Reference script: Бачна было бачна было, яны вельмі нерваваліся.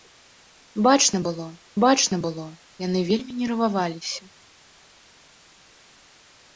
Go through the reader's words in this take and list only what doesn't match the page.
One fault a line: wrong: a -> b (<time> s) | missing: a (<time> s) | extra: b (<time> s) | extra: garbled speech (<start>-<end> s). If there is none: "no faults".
no faults